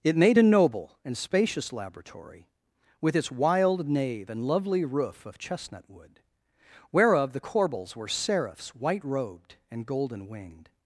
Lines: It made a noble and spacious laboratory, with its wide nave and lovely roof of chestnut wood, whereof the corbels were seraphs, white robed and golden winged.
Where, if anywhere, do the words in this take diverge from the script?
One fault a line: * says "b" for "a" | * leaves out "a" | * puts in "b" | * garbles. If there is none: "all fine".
* says "wild" for "wide"